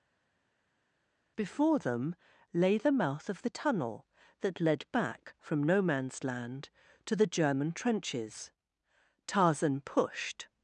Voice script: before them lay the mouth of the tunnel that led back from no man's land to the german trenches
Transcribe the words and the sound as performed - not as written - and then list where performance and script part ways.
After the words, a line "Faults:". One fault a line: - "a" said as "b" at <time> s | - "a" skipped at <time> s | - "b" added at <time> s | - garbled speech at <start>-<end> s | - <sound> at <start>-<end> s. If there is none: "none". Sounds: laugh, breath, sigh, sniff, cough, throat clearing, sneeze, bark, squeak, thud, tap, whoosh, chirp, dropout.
before them lay the mouth of the tunnel that led back from no man's land to the german trenches tarzan pushed
Faults:
- "tarzan pushed" added at 9.3 s